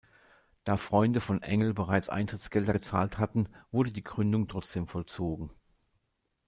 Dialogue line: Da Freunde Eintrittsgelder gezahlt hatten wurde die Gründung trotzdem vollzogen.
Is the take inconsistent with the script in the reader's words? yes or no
yes